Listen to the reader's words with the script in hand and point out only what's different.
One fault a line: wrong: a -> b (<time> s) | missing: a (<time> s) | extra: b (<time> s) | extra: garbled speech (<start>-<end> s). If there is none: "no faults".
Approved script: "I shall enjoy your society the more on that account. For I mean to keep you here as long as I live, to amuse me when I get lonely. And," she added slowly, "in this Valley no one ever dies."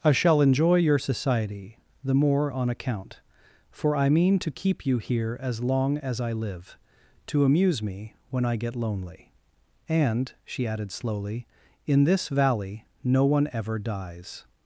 missing: that (2.7 s)